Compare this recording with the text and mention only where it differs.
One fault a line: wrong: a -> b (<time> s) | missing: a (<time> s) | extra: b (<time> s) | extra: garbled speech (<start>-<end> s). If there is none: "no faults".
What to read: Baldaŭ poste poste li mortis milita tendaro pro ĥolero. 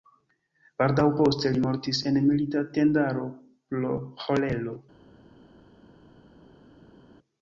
missing: poste (1.5 s)
extra: en (2.1 s)